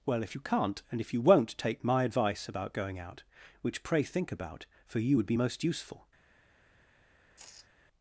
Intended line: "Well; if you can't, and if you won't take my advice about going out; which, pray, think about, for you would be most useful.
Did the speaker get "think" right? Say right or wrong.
right